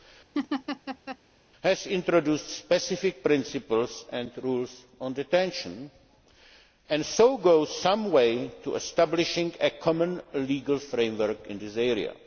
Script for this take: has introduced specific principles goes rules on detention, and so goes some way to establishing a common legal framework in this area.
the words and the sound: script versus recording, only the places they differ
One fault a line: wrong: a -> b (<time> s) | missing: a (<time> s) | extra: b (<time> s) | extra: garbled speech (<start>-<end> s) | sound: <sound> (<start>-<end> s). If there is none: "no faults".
sound: laugh (0.3-1.2 s)
wrong: goes -> and (4.1 s)